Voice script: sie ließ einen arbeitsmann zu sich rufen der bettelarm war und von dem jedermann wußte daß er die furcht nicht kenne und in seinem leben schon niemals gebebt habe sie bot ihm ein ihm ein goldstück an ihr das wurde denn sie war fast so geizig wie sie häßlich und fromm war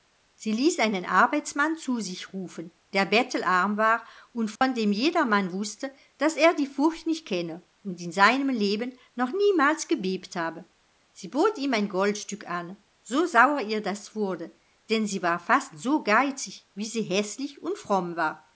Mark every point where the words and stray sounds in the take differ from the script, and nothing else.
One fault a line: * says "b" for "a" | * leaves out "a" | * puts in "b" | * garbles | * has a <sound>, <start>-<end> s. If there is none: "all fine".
* has a dropout, 4.6-4.6 s
* says "noch" for "schon"
* says "goldstück an so sauer" for "ihm ein goldstück an"